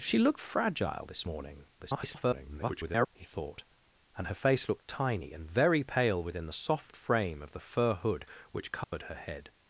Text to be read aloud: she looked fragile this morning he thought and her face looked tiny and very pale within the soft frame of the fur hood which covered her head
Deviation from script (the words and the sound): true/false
true